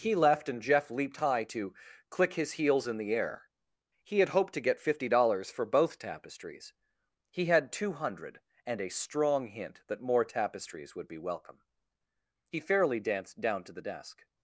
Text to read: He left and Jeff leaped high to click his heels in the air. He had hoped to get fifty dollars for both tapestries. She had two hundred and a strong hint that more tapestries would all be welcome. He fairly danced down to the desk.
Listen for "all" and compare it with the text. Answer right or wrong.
wrong